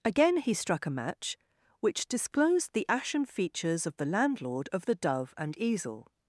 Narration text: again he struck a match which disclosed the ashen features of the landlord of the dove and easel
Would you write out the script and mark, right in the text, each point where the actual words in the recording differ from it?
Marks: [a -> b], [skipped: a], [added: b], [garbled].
again he struck a match which disclosed the ashen features of the landlord of the dove and easel